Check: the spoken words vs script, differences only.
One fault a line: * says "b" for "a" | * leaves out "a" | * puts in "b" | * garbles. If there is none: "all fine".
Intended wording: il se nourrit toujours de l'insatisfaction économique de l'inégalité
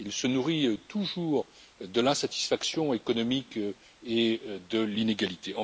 * puts in "et"